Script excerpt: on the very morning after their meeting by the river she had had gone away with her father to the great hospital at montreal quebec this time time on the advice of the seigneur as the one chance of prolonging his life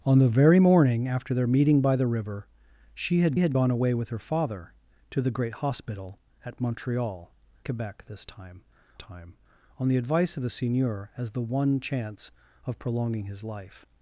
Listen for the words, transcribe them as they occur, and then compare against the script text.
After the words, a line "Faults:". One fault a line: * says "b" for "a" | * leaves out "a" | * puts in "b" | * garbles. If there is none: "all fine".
on the very morning after their meeting by the river she had had gone away with her father to the great hospital at montreal quebec this time time on the advice of the seigneur as the one chance of prolonging his life
Faults:
all fine